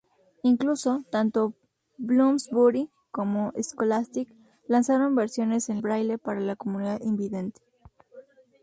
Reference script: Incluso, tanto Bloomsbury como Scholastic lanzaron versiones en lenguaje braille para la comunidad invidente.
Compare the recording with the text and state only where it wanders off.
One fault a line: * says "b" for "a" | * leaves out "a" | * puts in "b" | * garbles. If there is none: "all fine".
* leaves out "lenguaje"